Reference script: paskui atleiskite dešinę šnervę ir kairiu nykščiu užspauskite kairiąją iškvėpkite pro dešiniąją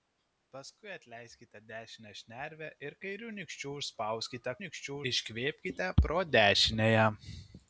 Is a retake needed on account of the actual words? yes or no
yes